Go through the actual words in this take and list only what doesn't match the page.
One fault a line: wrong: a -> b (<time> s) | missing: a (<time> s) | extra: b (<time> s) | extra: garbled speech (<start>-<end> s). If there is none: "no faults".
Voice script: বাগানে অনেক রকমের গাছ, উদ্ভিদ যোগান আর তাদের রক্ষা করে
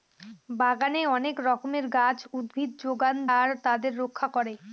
no faults